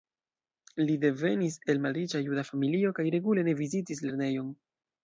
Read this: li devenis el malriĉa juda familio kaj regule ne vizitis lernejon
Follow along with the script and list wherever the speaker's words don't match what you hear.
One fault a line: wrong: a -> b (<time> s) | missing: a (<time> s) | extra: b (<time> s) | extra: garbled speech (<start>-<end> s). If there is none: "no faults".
no faults